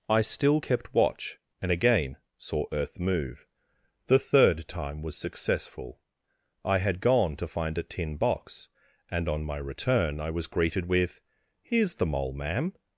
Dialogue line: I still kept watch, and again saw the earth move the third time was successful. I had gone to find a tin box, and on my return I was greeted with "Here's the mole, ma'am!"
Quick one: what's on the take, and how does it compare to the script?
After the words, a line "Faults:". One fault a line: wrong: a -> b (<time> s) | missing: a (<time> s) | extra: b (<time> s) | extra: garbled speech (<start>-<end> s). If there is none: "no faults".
I still kept watch, and again saw earth move the third time was successful. I had gone to find a tin box, and on my return I was greeted with "Here's the mole, ma'am!"
Faults:
missing: the (2.7 s)